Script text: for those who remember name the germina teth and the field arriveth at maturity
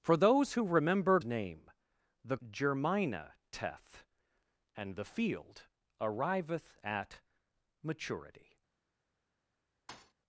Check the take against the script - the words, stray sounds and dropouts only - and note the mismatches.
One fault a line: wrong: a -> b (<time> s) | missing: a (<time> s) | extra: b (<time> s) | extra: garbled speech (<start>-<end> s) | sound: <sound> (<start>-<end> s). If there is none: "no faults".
sound: thud (9.9-10.1 s)